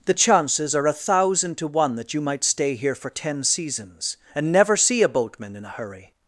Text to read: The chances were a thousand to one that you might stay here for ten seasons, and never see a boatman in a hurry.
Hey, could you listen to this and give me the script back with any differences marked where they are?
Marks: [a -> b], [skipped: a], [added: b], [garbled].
The chances [were -> are] a thousand to one that you might stay here for ten seasons, and never see a boatman in a hurry.